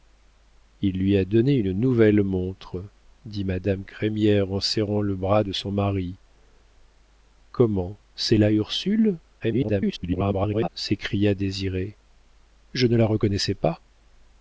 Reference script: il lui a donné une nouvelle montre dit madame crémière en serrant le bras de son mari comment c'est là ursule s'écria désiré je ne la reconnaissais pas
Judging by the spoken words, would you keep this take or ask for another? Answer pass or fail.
fail